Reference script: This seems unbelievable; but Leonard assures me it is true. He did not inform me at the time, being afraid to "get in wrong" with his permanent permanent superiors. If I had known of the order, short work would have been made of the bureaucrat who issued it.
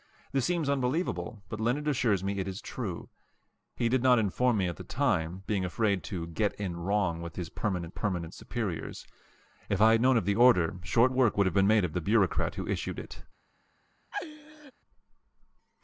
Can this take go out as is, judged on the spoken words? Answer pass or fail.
pass